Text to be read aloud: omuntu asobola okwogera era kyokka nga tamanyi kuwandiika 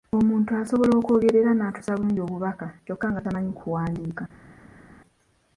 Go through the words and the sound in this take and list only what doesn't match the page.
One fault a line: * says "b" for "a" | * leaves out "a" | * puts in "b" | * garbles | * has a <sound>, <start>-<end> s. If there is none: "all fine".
* puts in "n'atuusa bulungi obubaka"